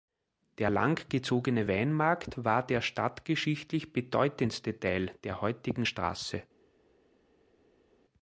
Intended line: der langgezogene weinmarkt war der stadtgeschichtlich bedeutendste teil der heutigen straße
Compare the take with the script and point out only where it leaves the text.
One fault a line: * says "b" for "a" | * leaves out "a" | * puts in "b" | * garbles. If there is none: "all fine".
all fine